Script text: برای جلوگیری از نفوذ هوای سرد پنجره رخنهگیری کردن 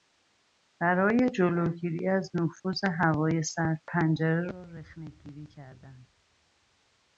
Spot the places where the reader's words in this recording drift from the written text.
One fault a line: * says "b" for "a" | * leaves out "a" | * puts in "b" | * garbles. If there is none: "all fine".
* puts in "را"